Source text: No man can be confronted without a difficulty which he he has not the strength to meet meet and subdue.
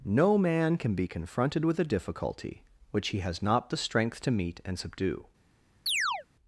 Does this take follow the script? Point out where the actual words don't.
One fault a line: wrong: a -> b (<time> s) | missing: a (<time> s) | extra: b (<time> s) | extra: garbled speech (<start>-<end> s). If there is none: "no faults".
wrong: without -> with (1.6 s)
missing: he (3.2 s)
missing: meet (4.6 s)